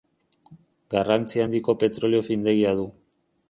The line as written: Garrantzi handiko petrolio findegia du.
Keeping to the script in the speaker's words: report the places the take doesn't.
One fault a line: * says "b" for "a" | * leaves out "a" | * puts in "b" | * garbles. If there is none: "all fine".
all fine